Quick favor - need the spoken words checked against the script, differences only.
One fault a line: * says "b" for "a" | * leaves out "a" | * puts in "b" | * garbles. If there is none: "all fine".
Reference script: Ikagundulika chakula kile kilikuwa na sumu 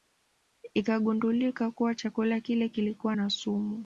* puts in "kuwa"